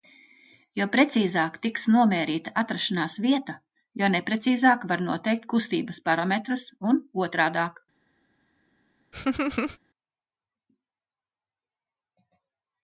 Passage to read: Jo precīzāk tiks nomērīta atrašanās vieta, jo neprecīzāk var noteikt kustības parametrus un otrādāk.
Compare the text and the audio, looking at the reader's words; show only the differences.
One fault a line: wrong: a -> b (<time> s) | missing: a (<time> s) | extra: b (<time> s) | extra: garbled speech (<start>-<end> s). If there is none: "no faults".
no faults